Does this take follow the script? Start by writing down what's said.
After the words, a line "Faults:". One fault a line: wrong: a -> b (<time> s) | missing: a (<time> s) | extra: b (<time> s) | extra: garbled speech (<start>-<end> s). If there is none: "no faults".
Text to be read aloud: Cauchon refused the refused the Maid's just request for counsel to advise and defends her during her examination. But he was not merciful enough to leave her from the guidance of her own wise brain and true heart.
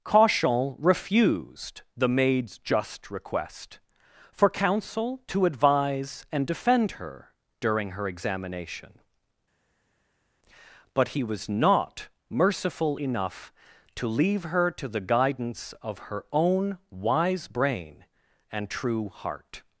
Cauchon refused the Maid's just request for counsel to advise and defend her during her examination. But he was not merciful enough to leave her to the guidance of her own wise brain and true heart.
Faults:
missing: refused the (2.1 s)
wrong: defends -> defend (6.5 s)
wrong: from -> to (14.7 s)